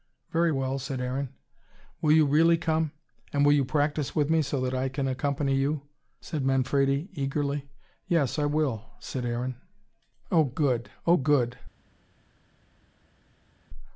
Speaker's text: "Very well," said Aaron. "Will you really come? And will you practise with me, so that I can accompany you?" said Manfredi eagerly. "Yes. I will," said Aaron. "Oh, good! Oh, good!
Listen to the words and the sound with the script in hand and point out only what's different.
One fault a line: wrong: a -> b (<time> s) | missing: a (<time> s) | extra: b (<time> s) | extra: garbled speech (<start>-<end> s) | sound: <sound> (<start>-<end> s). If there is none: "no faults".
no faults